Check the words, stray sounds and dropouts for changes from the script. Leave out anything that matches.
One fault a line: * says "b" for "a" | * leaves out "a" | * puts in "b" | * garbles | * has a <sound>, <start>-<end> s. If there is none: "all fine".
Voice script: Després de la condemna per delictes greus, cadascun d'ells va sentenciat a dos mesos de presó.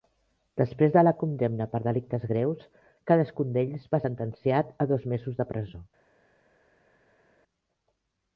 all fine